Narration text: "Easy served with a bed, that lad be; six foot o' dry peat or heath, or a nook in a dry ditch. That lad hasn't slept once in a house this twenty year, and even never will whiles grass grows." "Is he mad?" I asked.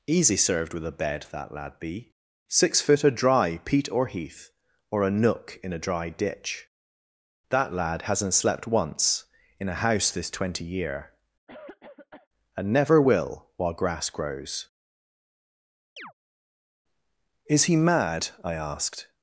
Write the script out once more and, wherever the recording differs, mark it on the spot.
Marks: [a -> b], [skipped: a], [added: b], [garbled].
"Easy served with a bed, that lad be; six foot o' dry peat or heath, or a nook in a dry ditch. That lad hasn't slept once in a house this twenty year, and [skipped: even] never will [whiles -> while] grass grows." "Is he mad?" I asked.